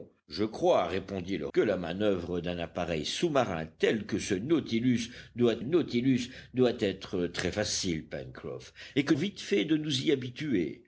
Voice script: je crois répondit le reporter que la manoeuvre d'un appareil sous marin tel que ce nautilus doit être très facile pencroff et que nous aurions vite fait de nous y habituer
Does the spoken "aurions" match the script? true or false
false